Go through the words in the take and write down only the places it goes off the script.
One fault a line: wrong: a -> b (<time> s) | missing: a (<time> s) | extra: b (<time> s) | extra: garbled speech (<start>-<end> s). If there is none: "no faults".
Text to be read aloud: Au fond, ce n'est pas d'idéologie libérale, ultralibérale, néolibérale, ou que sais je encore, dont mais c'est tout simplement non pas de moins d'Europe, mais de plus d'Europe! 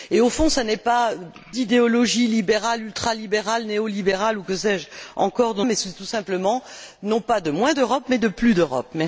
no faults